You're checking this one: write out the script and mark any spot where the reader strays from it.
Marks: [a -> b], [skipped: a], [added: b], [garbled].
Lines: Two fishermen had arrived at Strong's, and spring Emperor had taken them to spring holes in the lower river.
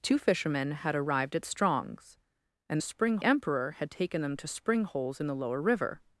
Two fishermen had arrived at Strong's, and spring Emperor had taken them to spring holes in the lower river.